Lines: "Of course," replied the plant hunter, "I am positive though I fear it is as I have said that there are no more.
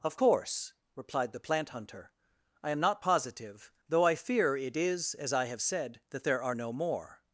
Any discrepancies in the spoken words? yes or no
yes